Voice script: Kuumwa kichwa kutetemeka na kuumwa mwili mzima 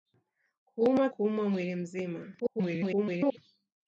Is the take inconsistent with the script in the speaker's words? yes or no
yes